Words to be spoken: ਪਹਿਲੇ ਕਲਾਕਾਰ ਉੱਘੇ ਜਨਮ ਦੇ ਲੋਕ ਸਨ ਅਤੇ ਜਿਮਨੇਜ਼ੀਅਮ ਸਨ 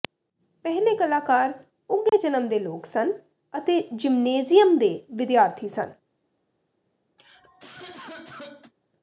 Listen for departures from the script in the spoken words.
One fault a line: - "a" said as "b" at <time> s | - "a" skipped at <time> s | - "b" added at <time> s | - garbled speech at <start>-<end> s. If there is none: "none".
- "ਦੇ ਵਿਦਿਆਰਥੀ" added at 4.8 s